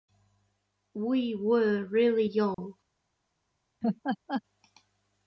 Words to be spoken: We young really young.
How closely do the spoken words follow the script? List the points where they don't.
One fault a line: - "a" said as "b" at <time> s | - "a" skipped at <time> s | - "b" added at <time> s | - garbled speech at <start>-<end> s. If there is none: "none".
- "young" said as "were" at 1.4 s